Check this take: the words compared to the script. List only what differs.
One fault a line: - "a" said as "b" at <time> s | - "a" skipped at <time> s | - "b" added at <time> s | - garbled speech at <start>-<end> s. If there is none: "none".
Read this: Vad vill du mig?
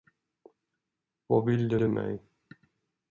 - "du" added at 1.8 s